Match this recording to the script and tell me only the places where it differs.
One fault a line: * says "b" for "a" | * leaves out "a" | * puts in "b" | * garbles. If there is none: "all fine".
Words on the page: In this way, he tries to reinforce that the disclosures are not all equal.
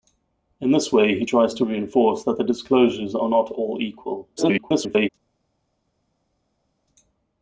* garbles